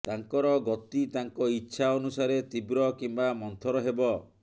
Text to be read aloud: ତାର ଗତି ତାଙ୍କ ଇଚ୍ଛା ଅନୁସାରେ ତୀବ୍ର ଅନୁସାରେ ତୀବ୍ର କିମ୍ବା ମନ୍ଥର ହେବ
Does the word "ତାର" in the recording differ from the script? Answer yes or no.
yes